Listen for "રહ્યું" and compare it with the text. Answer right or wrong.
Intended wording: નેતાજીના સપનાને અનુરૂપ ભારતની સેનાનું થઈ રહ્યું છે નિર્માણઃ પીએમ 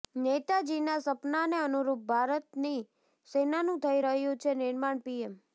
right